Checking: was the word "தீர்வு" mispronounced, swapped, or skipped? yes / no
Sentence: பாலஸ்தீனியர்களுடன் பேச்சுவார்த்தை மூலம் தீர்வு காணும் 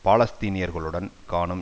yes